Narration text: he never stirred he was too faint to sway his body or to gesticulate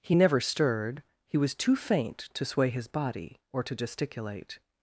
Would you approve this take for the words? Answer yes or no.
yes